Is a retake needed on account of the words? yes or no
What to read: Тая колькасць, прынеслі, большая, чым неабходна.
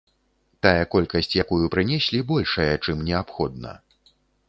yes